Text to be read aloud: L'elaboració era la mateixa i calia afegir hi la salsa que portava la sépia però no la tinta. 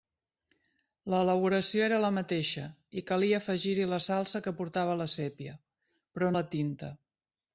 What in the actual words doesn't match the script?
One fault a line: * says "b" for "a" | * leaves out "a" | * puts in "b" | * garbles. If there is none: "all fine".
* leaves out "no"